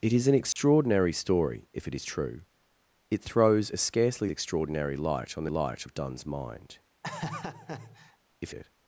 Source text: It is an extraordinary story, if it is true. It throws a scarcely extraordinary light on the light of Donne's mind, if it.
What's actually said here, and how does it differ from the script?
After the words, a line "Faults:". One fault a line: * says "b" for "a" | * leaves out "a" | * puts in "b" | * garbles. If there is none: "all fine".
It is an extraordinary story, if it is true. It throws a scarcely extraordinary light on the light of Donne's mind, if it.
Faults:
all fine